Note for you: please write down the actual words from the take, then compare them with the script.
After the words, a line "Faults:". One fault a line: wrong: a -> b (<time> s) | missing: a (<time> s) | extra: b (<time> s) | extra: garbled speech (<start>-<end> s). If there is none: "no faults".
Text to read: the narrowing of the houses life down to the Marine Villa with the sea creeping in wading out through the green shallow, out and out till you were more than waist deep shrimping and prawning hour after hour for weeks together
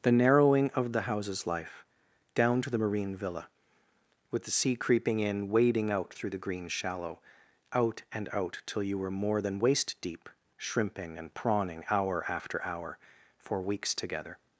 the narrowing of the houses life down to the Marine Villa with the sea creeping in wading out through the green shallow, out and out till you were more than waist deep shrimping and prawning hour after hour for weeks together
Faults:
no faults